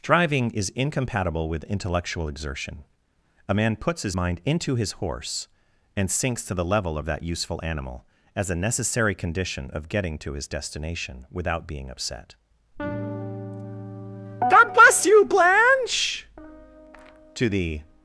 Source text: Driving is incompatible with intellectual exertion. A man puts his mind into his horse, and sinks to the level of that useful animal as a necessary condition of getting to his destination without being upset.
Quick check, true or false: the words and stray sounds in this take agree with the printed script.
false